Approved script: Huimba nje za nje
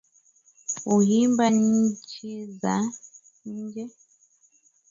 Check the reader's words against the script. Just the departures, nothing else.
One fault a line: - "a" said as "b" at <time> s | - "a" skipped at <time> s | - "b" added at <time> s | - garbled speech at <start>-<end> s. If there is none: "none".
- "nje" said as "nchi" at 1.5 s